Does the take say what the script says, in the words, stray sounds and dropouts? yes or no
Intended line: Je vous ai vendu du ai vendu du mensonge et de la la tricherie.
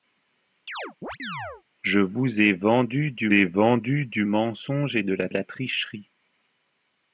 no